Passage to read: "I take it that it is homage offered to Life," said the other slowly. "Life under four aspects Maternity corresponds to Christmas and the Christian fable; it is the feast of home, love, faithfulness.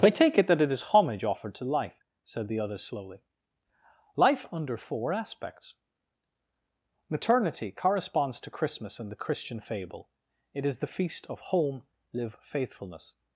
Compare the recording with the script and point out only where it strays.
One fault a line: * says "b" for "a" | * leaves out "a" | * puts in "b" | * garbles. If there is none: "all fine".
* says "live" for "love"